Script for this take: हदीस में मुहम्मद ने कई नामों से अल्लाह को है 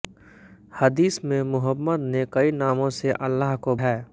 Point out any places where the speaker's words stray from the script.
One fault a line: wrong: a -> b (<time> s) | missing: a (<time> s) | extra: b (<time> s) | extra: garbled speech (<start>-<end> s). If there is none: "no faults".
no faults